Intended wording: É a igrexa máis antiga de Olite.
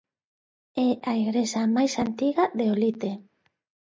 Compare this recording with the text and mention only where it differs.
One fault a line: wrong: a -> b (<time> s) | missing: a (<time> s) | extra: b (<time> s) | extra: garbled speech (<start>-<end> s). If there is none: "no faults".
no faults